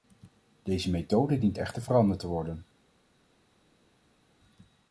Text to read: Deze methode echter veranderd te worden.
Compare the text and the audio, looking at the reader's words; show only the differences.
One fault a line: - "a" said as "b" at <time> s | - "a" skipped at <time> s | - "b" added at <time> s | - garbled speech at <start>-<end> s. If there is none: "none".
- "dient" added at 1.4 s